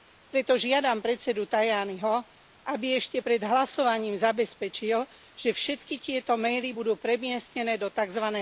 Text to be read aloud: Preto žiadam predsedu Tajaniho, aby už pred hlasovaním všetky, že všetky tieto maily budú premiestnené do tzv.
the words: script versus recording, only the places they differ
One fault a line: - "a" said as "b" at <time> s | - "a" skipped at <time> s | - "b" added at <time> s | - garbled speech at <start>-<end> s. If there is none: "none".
- "už" said as "ešte" at 3.0 s
- "všetky" said as "zabezpečil" at 4.1 s